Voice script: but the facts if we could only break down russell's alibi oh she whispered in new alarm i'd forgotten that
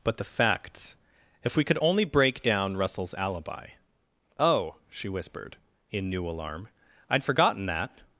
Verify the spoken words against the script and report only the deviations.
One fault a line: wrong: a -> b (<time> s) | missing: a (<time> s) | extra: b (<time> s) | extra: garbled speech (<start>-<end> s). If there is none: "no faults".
no faults